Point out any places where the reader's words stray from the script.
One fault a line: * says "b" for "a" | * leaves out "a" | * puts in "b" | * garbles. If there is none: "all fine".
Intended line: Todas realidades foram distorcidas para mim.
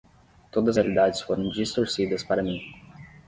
all fine